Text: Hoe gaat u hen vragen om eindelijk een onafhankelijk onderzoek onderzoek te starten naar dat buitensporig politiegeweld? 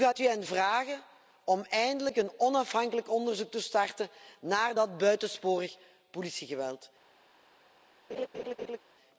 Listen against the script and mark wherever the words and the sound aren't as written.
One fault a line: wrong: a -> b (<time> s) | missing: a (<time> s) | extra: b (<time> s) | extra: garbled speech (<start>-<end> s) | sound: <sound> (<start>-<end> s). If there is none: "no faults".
missing: onderzoek (3.5 s)
sound: laugh (8.1-8.8 s)